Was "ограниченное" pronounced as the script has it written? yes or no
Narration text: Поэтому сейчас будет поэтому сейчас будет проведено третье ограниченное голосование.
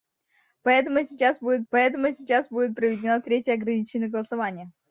yes